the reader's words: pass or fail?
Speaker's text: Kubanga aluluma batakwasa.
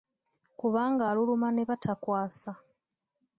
fail